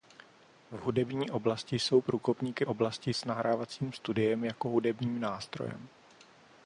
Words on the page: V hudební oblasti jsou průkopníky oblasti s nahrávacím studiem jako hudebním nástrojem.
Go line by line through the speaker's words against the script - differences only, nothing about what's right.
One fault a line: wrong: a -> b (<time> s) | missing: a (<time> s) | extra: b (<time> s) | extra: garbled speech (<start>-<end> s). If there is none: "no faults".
no faults